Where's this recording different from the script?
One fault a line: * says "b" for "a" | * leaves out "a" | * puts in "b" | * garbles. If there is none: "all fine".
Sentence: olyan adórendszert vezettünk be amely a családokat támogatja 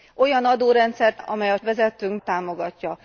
* leaves out "vezettünk be"
* says "vezettünk" for "családokat"